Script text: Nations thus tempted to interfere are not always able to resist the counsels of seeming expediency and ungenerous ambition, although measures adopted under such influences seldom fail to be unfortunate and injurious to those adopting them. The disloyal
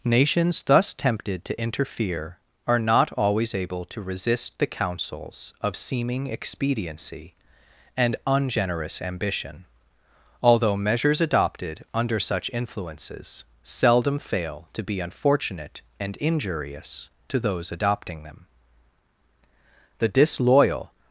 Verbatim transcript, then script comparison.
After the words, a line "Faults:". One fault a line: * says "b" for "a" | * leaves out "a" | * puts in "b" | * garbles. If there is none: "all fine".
Nations thus tempted to interfere are not always able to resist the counsels of seeming expediency and ungenerous ambition, although measures adopted under such influences seldom fail to be unfortunate and injurious to those adopting them. The disloyal
Faults:
all fine